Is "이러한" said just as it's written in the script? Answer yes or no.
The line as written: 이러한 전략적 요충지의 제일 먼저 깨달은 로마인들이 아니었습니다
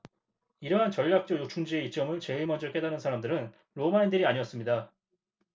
yes